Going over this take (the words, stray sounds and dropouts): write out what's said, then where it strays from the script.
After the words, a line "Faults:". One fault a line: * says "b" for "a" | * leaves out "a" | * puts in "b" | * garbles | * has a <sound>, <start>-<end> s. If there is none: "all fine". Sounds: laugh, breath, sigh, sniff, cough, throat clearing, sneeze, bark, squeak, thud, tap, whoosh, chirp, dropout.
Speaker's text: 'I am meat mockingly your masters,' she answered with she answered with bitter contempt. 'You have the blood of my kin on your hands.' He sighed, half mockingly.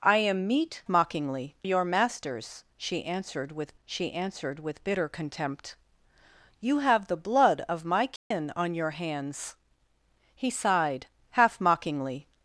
'I am meat mockingly your masters,' she answered with she answered with bitter contempt. 'You have the blood of my kin on your hands.' He sighed, half mockingly.
Faults:
* has a dropout, 8.2-8.3 s